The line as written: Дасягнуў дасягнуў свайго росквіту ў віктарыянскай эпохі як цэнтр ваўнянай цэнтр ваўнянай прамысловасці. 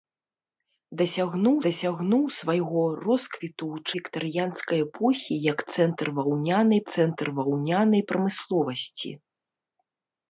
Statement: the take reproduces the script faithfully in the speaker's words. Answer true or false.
true